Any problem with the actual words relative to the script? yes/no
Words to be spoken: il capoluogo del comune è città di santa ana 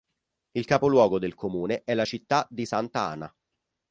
yes